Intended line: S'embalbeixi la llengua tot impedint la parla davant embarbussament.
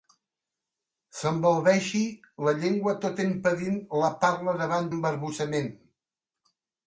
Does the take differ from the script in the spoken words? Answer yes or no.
no